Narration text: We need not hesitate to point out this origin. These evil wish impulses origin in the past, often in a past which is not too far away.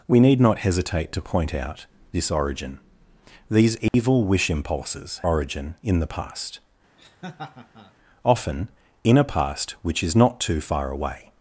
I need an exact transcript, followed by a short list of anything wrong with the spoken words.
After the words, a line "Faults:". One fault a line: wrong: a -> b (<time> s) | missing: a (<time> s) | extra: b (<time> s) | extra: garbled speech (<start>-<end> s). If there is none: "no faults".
We need not hesitate to point out this origin. These evil wish impulses origin in the past, often in a past which is not too far away.
Faults:
no faults